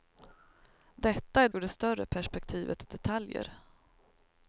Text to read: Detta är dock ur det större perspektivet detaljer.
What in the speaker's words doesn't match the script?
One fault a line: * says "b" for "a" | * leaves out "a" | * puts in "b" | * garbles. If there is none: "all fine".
* leaves out "dock"